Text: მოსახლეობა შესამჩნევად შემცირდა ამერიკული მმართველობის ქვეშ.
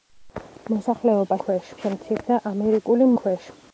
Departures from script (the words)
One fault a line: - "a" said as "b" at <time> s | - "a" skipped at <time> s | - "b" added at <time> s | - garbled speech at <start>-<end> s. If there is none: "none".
- "შესამჩნევად" said as "ქვეშ" at 1.4 s
- "მმართველობის" skipped at 3.1 s